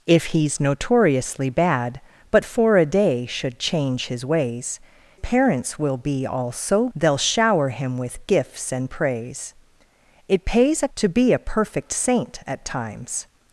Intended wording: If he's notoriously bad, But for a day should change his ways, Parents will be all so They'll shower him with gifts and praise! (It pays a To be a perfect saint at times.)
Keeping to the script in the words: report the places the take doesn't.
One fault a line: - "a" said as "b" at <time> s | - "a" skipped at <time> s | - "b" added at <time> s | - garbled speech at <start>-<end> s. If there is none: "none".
none